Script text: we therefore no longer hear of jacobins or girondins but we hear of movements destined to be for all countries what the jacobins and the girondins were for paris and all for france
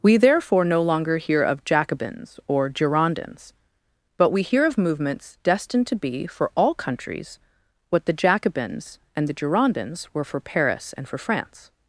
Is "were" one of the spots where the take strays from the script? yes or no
no